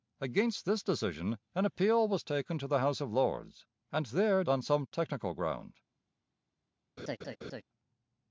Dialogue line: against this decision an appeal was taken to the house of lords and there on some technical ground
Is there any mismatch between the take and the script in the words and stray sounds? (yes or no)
yes